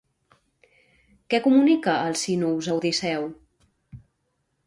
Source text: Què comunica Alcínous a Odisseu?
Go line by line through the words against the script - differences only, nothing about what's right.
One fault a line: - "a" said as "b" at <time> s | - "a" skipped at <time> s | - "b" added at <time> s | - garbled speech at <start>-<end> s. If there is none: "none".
none